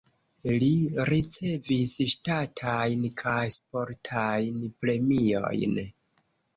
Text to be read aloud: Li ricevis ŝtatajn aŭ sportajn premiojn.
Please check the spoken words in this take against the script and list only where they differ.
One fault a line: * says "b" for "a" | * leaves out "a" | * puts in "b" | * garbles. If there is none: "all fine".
* says "kaj" for "aŭ"